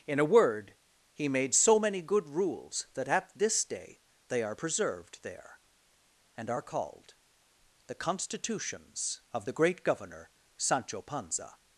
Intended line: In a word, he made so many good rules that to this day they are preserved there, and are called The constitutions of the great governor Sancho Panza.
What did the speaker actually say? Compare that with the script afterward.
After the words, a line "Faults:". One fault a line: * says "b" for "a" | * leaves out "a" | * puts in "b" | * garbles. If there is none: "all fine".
In a word, he made so many good rules that at this day they are preserved there, and are called The constitutions of the great governor Sancho Panza.
Faults:
* says "at" for "to"